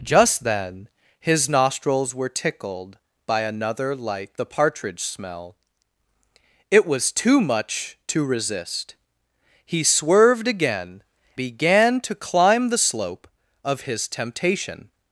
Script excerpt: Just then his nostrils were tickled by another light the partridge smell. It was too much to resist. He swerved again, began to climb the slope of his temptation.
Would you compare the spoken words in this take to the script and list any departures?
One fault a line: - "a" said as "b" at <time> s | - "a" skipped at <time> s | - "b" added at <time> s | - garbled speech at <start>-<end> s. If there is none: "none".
none